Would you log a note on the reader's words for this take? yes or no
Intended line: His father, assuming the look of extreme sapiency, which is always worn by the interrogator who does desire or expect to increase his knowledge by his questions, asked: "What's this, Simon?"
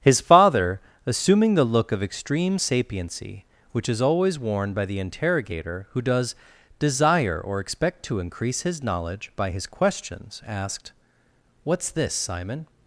no